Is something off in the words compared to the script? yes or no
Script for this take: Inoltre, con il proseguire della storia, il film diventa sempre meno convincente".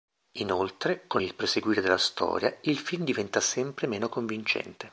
no